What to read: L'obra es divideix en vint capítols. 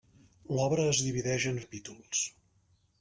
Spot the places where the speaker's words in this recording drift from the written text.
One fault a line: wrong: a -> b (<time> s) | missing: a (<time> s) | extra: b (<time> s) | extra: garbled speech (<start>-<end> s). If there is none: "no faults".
missing: vint (1.6 s)